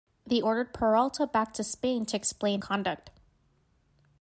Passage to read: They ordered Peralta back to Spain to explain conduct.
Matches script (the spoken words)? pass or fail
pass